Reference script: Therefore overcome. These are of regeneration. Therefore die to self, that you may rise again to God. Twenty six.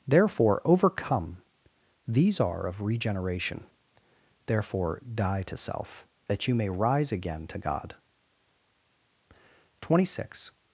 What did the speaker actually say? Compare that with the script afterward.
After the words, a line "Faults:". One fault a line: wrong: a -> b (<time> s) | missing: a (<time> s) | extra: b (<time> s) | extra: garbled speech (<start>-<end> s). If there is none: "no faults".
Therefore overcome. These are of regeneration. Therefore die to self, that you may rise again to God. Twenty six.
Faults:
no faults